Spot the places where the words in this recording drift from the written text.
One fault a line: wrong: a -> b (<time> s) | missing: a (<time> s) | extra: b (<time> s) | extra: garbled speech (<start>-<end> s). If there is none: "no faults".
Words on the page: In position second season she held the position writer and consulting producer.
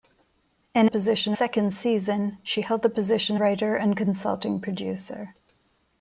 no faults